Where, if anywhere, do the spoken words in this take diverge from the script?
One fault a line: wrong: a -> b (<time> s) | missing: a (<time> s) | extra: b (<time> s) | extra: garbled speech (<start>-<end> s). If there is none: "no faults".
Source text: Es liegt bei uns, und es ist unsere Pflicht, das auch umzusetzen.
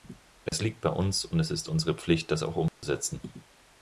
no faults